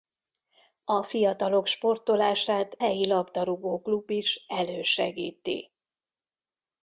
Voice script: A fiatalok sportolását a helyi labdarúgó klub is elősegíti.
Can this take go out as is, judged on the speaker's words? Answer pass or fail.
fail